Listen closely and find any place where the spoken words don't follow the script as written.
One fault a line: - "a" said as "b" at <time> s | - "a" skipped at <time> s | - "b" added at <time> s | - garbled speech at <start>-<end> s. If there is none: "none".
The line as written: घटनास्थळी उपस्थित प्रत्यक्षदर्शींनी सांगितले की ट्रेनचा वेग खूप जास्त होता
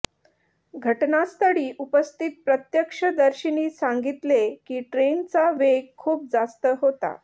none